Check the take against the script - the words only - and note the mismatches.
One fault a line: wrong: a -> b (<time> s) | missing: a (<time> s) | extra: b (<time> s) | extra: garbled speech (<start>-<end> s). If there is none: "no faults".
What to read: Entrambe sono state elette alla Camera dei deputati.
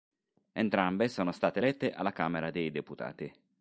no faults